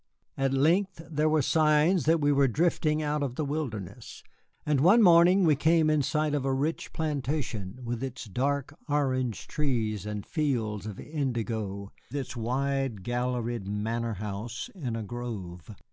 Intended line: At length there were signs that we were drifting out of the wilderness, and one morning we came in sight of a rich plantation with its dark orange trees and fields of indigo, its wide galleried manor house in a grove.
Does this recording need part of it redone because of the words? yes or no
no